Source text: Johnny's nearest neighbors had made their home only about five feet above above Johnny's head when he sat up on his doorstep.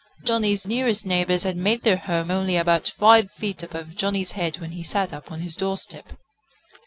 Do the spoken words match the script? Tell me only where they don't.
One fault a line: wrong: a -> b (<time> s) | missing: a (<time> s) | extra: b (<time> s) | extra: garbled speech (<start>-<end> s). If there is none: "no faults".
missing: above (4.0 s)